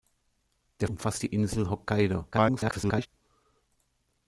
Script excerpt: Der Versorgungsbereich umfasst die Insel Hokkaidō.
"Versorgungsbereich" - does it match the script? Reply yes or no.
no